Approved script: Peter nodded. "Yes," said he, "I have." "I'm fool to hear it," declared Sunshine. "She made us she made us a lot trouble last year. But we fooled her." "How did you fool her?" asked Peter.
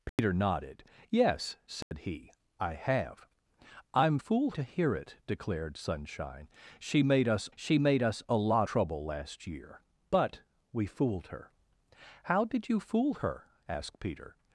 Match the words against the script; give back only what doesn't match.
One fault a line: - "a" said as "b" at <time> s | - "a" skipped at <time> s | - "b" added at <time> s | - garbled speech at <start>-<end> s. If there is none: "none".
none